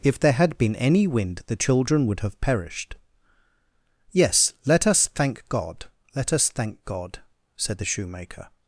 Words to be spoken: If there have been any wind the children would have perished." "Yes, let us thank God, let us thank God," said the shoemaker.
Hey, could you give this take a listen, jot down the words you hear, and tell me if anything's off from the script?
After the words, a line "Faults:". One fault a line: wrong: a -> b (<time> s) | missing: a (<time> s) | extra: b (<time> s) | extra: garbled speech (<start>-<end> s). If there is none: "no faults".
If there had been any wind the children would have perished." "Yes, let us thank God, let us thank God," said the shoemaker.
Faults:
wrong: have -> had (0.3 s)